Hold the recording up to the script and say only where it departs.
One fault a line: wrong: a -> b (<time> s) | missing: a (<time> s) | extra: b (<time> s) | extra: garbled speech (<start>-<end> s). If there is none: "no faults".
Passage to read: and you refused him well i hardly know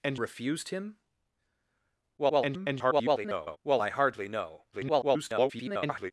missing: you (0.2 s)
extra: garbled speech (2.2-3.6 s)
extra: garbled speech (4.7-6.1 s)